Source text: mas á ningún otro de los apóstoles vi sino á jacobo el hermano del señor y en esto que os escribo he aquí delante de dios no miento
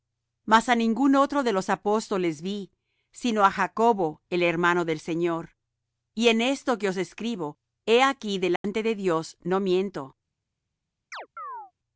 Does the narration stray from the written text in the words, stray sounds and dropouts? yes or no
yes